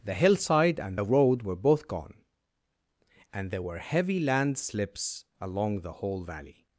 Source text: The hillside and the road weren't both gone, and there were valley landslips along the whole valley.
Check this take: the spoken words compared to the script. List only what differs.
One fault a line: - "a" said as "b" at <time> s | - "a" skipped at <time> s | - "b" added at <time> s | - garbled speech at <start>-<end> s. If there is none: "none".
- "weren't" said as "were" at 1.4 s
- "valley" said as "heavy" at 3.8 s